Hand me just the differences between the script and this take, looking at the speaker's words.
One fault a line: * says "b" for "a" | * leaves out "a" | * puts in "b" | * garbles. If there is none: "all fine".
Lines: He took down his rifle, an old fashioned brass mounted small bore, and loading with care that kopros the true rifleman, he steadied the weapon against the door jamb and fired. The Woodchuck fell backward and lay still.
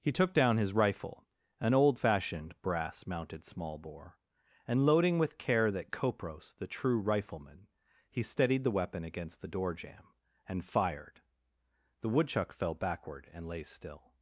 all fine